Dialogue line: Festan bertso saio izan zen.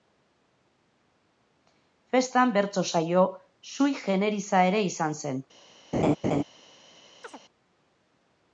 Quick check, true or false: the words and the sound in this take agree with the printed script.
false